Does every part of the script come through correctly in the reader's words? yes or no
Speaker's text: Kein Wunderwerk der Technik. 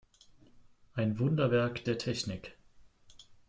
no